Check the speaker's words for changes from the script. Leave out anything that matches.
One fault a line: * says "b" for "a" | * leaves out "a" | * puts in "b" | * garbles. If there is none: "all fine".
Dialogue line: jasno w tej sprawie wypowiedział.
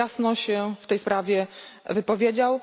* puts in "się"